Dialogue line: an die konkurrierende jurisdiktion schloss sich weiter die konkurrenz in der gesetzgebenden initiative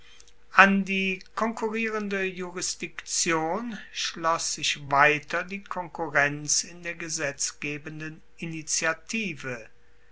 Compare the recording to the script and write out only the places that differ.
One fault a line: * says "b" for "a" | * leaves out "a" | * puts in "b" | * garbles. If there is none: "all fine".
all fine